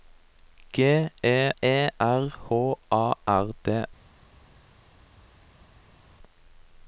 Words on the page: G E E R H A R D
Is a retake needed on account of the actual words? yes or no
no